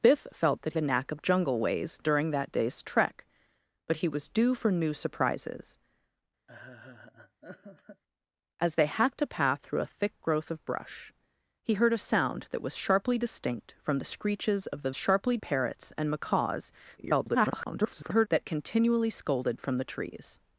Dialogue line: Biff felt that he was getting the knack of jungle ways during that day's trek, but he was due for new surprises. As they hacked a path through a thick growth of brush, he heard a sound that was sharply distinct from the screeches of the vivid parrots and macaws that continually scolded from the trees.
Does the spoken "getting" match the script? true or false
false